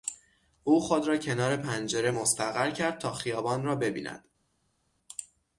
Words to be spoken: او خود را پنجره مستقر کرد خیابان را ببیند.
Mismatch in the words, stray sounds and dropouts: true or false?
true